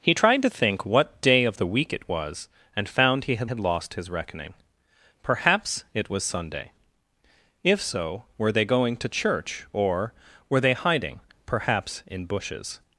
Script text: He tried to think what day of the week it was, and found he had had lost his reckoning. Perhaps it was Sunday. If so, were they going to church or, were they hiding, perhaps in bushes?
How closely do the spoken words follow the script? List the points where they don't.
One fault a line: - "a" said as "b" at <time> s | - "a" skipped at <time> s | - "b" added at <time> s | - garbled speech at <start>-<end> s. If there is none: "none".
none